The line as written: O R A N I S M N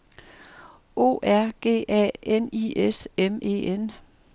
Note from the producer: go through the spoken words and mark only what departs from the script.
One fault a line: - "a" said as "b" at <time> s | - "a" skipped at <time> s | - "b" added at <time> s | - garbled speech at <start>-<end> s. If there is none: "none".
- "G" added at 1.6 s
- "E" added at 3.4 s